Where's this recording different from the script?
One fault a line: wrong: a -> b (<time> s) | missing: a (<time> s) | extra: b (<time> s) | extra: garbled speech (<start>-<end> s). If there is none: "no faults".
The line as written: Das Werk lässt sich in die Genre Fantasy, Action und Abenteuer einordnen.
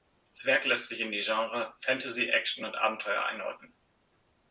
no faults